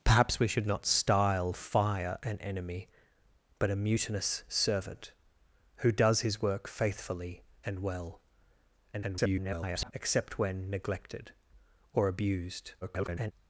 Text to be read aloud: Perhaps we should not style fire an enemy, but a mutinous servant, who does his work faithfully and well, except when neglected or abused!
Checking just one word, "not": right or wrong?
right